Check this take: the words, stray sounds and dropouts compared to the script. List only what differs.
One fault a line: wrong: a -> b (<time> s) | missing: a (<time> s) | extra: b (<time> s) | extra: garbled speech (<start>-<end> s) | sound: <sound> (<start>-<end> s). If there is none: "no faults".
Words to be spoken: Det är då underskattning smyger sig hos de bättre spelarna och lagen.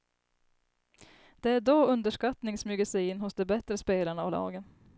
extra: in (3.1 s)